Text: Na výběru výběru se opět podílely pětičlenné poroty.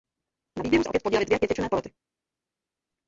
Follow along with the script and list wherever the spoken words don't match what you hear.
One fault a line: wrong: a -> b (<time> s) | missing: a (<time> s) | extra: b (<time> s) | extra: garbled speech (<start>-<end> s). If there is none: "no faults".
missing: výběru (0.8 s)
extra: dvě (1.2 s)